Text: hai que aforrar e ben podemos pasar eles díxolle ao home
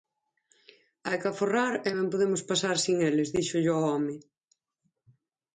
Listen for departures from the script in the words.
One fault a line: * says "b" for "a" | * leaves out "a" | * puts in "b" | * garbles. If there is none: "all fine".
* puts in "sen"